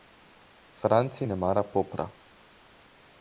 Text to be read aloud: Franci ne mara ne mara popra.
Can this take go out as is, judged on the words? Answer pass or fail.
fail